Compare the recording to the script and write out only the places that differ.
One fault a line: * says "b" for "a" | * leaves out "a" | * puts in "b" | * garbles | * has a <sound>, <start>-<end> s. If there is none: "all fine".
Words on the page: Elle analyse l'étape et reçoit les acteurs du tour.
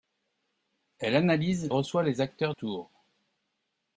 * leaves out "l'étape et"
* leaves out "du"